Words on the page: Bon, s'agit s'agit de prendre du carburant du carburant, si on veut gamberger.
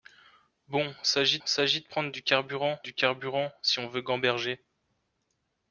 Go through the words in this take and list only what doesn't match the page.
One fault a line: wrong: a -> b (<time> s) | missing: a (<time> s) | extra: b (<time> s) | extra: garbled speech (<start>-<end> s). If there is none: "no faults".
no faults